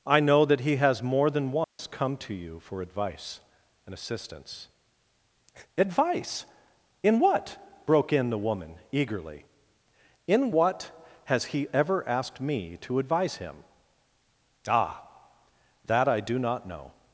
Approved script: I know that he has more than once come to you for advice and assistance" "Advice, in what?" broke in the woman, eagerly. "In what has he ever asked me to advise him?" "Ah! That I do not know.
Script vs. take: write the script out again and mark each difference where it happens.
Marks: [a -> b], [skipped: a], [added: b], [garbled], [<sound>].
I know that he has more than once [dropout] come to you for advice and assistance" "Advice, in what?" broke in the woman, eagerly. "In what has he ever asked me to advise him?" "Ah! That I do not know.